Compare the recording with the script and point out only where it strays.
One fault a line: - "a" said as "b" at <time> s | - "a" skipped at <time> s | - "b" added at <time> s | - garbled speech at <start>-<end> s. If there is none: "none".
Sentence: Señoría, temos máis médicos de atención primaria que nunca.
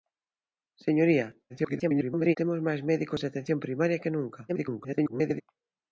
- garbled speech at 1.5-2.4 s
- garbled speech at 4.5-5.4 s